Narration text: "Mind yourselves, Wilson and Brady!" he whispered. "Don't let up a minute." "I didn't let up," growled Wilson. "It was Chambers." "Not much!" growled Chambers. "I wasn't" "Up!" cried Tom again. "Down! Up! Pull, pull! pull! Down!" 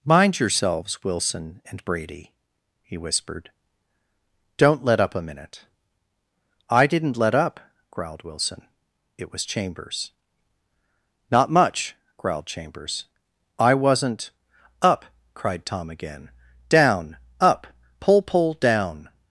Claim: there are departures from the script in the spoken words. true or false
true